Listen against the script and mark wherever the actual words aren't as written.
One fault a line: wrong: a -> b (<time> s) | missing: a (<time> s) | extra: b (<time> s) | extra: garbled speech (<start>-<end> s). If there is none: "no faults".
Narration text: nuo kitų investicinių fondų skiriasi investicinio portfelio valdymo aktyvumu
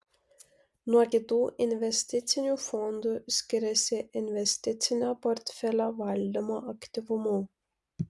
no faults